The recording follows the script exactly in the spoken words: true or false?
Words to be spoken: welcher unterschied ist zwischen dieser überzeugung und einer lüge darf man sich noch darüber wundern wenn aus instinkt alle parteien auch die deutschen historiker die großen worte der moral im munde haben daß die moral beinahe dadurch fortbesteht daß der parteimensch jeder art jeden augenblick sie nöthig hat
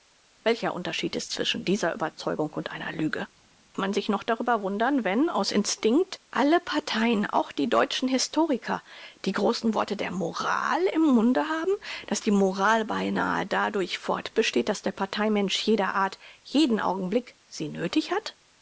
false